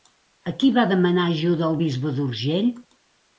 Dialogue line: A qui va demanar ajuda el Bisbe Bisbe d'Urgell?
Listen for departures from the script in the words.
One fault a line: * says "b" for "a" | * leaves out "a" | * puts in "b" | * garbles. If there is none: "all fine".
* leaves out "Bisbe"